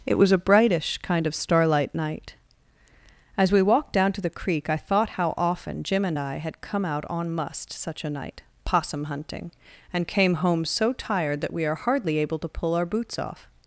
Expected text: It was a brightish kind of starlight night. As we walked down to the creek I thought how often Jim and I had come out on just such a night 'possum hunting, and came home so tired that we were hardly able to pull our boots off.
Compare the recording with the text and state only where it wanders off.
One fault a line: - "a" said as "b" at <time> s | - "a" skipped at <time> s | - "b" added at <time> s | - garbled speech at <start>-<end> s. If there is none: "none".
- "just" said as "must" at 7.3 s
- "were" said as "are" at 11.6 s